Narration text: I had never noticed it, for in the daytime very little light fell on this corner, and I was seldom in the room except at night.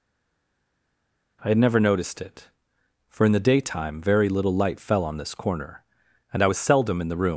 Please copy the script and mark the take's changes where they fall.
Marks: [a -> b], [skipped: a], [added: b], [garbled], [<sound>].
I had never noticed it, for in the daytime very little light fell on this corner, and I was seldom in the room [skipped: except at night.]